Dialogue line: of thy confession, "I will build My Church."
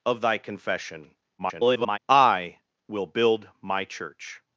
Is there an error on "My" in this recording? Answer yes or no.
no